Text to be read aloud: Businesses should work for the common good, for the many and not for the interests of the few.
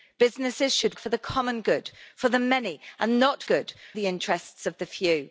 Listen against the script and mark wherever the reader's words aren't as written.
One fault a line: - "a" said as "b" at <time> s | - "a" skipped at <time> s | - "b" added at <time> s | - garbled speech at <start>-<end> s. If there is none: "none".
- "work" skipped at 1.0 s
- "for" said as "good" at 3.4 s